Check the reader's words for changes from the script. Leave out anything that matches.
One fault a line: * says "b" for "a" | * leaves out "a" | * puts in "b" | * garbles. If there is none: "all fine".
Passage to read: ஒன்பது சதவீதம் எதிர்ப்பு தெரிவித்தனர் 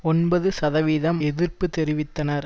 all fine